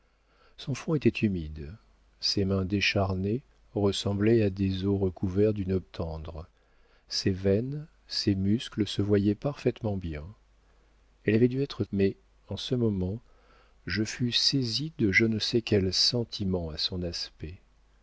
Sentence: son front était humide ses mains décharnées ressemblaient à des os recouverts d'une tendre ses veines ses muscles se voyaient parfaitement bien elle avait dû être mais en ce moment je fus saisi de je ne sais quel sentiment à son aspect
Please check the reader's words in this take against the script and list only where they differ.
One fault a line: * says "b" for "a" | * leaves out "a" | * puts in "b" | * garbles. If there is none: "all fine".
all fine